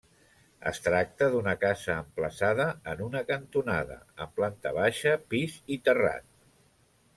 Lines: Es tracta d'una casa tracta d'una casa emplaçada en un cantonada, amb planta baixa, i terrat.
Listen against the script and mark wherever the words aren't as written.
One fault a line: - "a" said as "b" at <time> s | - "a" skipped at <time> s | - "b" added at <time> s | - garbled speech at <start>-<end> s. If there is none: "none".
- "tracta d'una casa" skipped at 2.0 s
- "un" said as "una" at 3.1 s
- "pis" added at 5.3 s